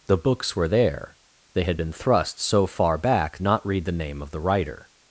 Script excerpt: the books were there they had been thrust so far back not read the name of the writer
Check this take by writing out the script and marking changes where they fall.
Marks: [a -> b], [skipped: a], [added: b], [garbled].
the books were there they had been thrust so far back not read the name of the writer